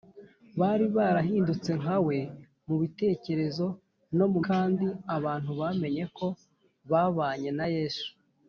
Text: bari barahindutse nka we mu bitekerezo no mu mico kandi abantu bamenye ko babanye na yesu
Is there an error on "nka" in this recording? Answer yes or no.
no